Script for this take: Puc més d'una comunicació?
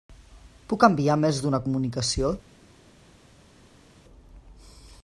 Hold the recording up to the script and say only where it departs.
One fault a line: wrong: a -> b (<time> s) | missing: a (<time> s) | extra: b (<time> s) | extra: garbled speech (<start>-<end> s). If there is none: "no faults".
extra: enviar (0.9 s)